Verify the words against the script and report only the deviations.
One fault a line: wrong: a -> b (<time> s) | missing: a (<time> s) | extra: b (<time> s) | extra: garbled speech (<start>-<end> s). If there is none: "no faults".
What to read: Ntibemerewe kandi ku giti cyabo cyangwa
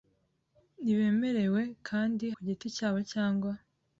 no faults